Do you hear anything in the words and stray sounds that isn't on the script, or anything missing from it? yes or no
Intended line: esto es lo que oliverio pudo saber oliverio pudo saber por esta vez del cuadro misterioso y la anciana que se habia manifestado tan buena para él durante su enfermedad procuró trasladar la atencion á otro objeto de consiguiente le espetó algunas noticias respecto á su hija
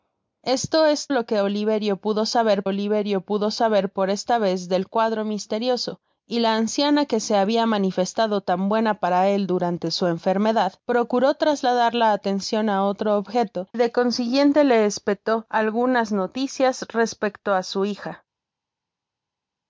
no